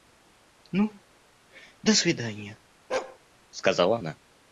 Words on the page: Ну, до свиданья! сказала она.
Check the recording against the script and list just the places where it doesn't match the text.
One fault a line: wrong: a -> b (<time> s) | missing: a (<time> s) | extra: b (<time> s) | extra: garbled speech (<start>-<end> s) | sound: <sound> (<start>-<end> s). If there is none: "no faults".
sound: bark (2.9-3.2 s)